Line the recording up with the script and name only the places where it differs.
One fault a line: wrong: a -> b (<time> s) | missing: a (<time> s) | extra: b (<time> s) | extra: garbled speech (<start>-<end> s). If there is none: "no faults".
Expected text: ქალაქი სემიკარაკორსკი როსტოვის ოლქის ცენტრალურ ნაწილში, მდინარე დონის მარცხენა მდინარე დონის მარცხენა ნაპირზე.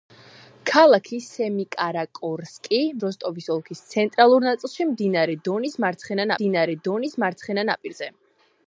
no faults